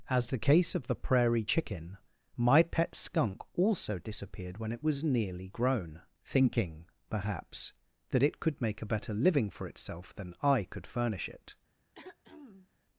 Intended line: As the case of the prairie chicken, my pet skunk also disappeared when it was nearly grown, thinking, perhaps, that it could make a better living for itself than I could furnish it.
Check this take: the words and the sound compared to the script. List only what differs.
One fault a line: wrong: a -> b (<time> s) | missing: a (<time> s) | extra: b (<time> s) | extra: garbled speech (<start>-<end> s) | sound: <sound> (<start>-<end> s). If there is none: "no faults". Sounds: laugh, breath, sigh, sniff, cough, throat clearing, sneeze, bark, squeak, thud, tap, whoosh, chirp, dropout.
sound: throat clearing (11.9-12.7 s)